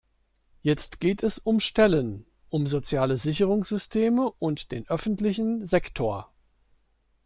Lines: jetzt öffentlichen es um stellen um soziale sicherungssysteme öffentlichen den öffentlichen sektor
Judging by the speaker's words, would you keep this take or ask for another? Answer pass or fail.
fail